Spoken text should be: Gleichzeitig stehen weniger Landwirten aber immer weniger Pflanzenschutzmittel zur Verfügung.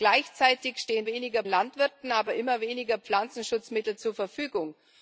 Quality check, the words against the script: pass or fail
pass